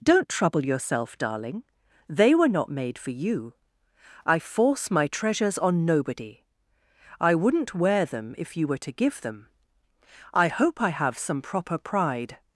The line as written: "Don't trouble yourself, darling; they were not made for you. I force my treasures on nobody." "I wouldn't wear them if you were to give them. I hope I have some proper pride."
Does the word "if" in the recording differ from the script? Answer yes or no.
no